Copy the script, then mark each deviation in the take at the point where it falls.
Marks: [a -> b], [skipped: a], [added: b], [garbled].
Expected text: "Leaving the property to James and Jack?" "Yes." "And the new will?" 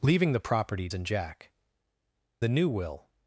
"Leaving the property [skipped: to James] and Jack?" [skipped: "Yes." "And] the new will?"